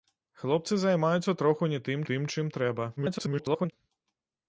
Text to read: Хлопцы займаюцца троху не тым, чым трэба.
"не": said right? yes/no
yes